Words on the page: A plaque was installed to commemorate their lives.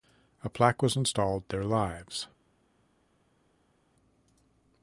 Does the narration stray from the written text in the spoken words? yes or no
yes